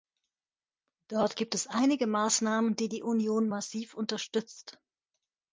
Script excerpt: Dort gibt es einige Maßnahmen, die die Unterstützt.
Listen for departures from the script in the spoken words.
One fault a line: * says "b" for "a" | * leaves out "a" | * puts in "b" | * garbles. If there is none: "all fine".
* puts in "Union massiv"